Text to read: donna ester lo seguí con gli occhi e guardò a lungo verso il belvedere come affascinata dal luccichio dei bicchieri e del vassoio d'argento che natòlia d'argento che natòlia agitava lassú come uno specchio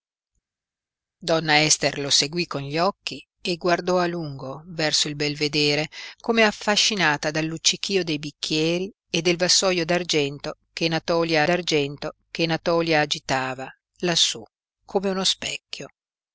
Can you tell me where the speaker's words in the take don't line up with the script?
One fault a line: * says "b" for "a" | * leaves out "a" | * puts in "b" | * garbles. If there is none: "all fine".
all fine